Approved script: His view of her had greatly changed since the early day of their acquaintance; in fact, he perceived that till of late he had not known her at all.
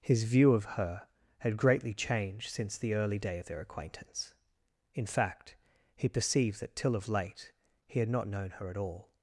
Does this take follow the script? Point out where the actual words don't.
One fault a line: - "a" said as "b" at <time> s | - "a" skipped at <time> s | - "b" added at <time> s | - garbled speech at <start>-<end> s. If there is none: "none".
none